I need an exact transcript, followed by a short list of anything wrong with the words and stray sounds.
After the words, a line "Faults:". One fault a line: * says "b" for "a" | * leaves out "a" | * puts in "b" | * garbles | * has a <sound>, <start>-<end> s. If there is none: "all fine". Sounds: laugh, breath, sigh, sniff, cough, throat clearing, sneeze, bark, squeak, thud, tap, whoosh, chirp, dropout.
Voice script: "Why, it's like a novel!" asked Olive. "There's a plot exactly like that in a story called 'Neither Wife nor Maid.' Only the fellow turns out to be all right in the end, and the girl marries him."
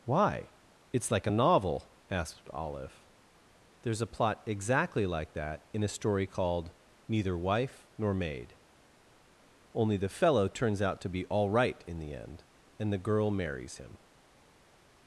"Why, it's like a novel!" asked Olive. "There's a plot exactly like that in a story called 'Neither Wife nor Maid.' Only the fellow turns out to be all right in the end, and the girl marries him."
Faults:
all fine